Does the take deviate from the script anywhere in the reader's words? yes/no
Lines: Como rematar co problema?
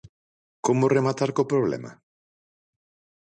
no